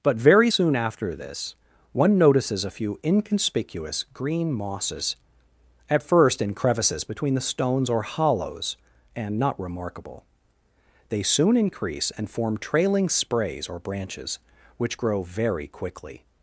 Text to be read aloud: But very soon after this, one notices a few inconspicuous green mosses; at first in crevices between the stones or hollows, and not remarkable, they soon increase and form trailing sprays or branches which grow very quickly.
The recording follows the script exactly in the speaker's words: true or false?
true